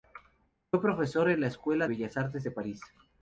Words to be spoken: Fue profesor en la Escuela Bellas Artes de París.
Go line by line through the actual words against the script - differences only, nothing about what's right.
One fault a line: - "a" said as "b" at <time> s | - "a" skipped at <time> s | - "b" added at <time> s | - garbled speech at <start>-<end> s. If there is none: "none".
none